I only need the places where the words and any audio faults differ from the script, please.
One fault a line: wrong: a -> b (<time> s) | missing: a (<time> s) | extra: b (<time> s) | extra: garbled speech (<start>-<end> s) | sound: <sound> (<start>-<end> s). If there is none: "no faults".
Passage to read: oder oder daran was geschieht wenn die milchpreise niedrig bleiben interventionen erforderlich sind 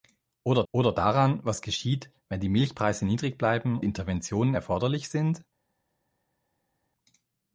no faults